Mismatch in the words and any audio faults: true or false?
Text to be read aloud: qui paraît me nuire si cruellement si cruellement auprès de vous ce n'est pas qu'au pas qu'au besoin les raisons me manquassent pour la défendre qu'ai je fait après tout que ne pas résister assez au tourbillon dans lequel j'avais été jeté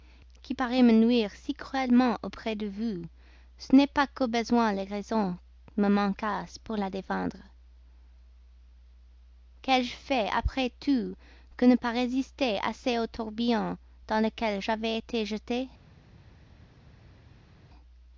true